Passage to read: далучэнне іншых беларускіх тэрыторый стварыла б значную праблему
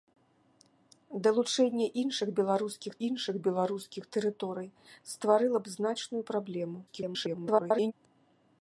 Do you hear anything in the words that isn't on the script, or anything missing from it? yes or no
yes